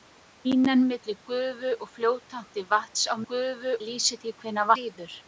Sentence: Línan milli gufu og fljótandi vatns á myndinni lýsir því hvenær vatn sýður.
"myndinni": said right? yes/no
no